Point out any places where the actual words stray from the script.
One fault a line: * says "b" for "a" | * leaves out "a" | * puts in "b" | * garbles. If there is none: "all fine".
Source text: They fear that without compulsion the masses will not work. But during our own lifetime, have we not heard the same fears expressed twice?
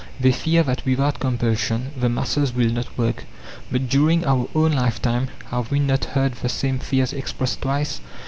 all fine